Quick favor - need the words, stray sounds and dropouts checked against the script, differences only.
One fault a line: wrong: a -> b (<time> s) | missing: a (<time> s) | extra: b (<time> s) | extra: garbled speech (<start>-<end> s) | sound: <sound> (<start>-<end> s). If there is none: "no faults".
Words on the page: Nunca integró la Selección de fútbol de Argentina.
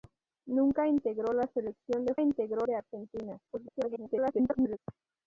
wrong: fútbol -> integró (2.2 s)
extra: garbled speech (3.5-4.8 s)